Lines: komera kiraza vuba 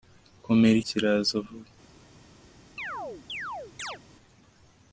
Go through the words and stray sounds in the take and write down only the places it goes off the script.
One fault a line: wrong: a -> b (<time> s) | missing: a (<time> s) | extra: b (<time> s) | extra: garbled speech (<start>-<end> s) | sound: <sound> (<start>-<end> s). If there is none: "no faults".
sound: chirp (2.8-4.0 s)